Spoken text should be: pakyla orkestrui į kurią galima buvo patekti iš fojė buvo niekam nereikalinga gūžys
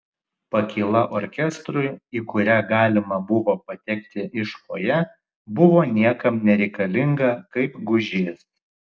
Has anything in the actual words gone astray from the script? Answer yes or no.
yes